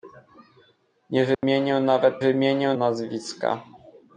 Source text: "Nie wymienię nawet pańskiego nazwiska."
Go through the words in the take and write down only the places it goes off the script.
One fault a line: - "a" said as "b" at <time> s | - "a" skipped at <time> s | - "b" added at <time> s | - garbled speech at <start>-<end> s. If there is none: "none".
- "pańskiego" said as "wymienię" at 2.2 s